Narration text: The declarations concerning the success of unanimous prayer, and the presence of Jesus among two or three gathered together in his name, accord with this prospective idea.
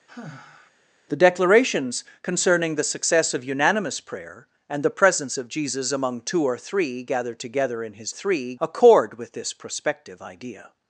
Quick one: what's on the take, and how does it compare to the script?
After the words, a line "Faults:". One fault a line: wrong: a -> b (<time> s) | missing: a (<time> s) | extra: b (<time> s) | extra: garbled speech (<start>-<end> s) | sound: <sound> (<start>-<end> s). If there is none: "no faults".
The declarations concerning the success of unanimous prayer, and the presence of Jesus among two or three gathered together in his three, accord with this prospective idea.
Faults:
sound: sigh (0.1-0.7 s)
wrong: name -> three (8.1 s)